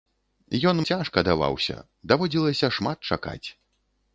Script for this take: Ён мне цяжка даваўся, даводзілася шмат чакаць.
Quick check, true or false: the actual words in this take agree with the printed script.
false